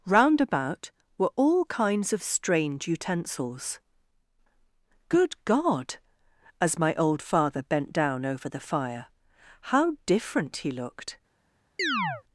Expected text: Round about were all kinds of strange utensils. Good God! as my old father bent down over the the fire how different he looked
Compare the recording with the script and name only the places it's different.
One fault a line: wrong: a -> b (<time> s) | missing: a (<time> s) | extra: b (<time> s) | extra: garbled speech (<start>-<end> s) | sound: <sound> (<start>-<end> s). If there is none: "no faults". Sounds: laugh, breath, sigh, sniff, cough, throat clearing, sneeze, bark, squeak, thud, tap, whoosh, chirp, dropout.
missing: the (8.6 s)
sound: chirp (11.8-12.2 s)